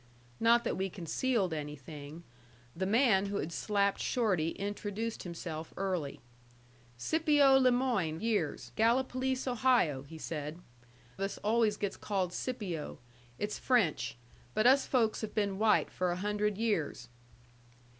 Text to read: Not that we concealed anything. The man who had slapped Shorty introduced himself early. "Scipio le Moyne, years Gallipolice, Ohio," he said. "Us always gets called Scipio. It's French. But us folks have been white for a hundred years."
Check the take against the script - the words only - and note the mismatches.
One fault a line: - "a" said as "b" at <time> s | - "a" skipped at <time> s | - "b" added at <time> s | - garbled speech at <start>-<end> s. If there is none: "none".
none